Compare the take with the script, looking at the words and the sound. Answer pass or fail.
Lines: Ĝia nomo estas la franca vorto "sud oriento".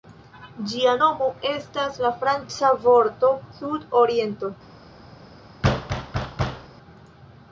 fail